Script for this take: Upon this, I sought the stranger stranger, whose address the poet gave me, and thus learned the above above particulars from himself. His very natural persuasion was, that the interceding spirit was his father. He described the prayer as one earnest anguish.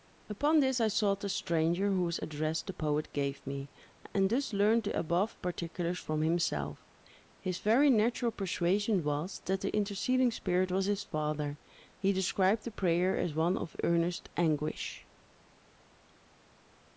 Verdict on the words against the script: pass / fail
fail